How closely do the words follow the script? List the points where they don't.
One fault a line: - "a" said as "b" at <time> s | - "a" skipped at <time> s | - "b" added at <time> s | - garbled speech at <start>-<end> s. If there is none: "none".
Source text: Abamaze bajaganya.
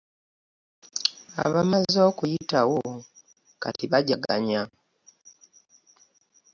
- "okuyitawo kati" added at 2.1 s